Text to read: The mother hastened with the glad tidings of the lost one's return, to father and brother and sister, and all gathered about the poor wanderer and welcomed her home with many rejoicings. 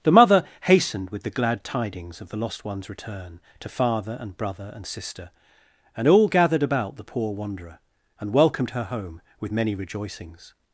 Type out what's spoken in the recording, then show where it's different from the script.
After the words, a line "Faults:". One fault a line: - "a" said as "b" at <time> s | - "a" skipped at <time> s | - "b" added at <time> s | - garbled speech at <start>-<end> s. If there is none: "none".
The mother hastened with the glad tidings of the lost one's return, to father and brother and sister, and all gathered about the poor wanderer and welcomed her home with many rejoicings.
Faults:
none